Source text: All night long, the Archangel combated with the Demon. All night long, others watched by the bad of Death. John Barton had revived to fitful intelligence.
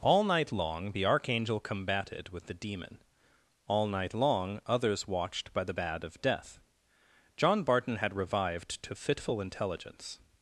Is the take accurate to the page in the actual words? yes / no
yes